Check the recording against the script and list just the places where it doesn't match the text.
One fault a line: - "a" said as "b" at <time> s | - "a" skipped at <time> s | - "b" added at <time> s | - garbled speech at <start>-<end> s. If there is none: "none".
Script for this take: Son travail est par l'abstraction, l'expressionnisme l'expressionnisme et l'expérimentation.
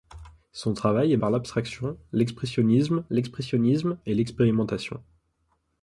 none